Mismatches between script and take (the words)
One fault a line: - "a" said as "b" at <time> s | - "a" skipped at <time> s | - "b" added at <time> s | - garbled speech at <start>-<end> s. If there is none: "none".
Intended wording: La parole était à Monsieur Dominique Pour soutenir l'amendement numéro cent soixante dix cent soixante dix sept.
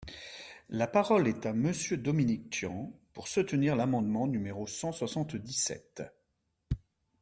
- "était" said as "est" at 1.3 s
- "Tian" added at 2.5 s
- "cent soixante dix" skipped at 5.5 s